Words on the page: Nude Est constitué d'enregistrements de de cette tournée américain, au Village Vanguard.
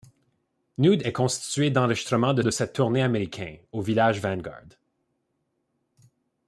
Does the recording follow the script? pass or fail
pass